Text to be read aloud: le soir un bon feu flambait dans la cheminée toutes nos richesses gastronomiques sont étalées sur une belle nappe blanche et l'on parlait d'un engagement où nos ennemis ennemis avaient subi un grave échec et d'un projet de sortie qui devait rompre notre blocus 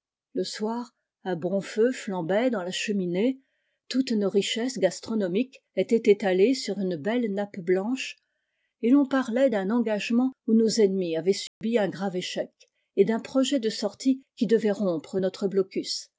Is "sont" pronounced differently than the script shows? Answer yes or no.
yes